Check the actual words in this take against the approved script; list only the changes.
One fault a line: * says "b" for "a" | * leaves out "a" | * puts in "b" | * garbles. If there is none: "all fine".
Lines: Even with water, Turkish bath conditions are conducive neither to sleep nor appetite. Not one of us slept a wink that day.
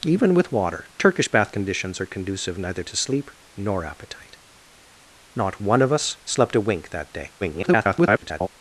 * garbles